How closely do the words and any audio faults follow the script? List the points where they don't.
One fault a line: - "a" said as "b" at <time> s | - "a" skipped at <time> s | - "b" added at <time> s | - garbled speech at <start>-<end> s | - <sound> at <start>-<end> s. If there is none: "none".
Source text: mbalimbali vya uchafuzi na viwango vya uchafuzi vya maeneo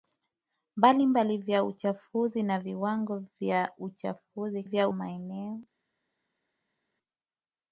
none